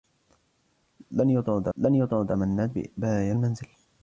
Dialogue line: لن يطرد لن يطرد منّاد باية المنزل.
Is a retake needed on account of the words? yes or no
no